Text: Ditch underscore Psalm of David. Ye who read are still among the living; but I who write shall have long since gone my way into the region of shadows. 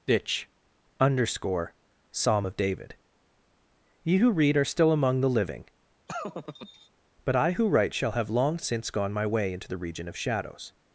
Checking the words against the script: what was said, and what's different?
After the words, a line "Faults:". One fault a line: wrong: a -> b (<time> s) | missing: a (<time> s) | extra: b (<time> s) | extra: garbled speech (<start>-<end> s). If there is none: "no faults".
Ditch underscore Psalm of David. Ye who read are still among the living; but I who write shall have long since gone my way into the region of shadows.
Faults:
no faults